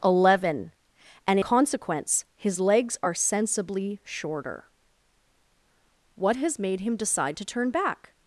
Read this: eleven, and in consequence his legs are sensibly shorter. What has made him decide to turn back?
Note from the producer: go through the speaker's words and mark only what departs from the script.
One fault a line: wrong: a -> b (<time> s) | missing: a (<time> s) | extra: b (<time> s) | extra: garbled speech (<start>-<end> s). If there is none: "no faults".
missing: in (1.4 s)